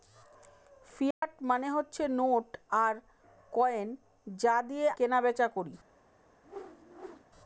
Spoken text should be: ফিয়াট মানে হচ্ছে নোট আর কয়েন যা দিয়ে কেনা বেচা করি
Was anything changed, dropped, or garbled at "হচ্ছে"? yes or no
no